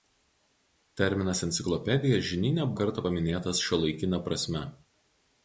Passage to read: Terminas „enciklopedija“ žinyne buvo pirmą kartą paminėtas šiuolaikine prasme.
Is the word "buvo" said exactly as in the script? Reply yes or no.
no